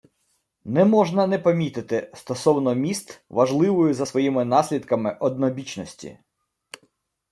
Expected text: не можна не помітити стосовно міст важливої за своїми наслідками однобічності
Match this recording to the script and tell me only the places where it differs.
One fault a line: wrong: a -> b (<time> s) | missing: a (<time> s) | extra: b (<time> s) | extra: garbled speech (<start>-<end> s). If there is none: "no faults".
no faults